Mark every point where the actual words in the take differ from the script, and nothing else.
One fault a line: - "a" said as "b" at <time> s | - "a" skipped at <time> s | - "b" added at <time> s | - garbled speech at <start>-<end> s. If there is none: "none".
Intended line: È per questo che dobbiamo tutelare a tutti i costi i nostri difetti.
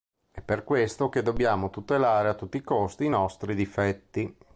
none